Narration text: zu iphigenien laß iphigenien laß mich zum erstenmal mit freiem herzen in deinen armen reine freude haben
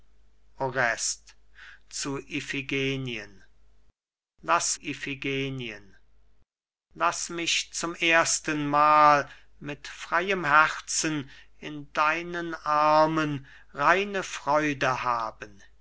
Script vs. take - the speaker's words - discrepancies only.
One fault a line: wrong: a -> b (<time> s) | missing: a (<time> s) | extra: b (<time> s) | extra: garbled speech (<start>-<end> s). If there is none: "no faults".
no faults